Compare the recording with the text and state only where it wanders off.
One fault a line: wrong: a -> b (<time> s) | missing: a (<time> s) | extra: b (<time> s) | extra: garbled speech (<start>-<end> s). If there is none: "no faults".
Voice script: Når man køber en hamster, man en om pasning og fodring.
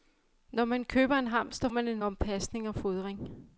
no faults